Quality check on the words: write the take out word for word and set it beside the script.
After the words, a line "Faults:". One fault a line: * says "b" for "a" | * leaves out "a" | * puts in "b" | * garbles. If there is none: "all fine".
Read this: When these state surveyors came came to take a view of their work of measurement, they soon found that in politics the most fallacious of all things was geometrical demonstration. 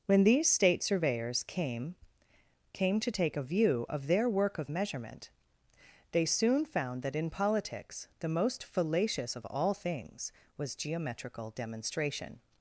When these state surveyors came came to take a view of their work of measurement, they soon found that in politics the most fallacious of all things was geometrical demonstration.
Faults:
all fine